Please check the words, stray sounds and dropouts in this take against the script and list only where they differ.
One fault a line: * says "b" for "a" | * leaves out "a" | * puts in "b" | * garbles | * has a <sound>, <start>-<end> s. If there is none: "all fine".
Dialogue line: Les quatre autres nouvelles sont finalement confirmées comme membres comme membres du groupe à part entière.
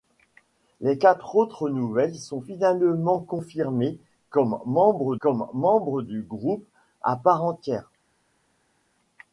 all fine